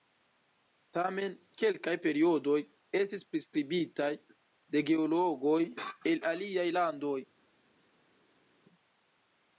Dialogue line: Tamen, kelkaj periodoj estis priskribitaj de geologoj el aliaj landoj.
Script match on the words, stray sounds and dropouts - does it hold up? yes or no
yes